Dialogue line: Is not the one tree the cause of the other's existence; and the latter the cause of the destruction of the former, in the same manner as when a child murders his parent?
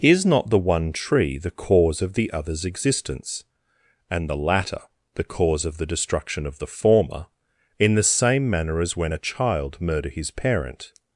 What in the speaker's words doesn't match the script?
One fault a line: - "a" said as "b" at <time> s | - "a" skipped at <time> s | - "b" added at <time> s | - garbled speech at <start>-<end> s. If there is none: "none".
- "murders" said as "murder" at 9.8 s